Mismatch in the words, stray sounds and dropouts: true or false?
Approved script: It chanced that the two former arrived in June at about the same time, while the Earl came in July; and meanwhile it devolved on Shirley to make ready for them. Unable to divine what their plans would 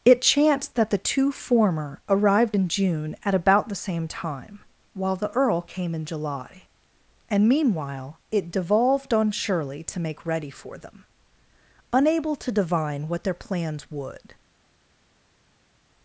false